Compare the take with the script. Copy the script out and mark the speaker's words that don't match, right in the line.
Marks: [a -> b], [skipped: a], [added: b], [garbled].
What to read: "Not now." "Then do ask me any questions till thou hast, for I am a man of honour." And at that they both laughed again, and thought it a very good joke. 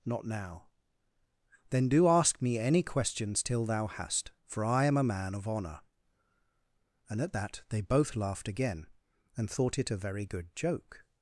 "Not now." "Then do ask me any questions till thou hast, for I am a man of honour." And at that they both laughed again, and thought it a very good joke.